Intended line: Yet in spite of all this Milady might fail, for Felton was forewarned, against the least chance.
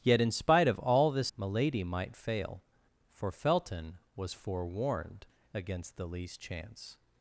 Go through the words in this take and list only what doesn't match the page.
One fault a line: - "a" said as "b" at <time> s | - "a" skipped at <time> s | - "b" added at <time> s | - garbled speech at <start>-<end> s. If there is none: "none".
none